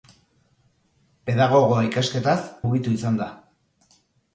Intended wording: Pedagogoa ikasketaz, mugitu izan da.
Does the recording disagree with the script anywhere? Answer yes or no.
no